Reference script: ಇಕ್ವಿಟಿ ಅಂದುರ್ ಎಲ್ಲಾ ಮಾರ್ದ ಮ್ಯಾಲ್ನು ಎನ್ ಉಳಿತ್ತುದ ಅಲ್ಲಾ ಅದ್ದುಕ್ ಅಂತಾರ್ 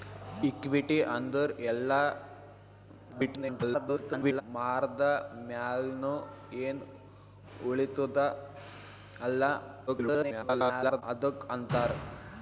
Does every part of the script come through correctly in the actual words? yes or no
no